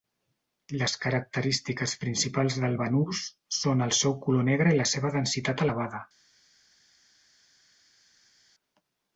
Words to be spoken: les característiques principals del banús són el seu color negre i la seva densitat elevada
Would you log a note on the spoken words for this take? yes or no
no